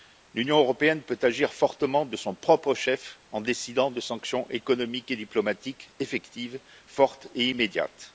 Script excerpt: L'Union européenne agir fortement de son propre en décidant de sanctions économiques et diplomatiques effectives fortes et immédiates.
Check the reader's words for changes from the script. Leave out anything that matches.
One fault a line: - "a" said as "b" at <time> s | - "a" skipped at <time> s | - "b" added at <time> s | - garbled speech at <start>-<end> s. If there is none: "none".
- "peut" added at 1.0 s
- "chef" added at 2.7 s